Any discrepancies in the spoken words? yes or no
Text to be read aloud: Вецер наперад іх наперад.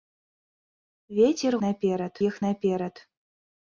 no